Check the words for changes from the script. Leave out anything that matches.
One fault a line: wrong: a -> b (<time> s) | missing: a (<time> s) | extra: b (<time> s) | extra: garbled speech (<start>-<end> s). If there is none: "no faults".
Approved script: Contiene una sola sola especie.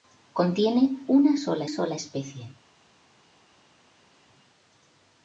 no faults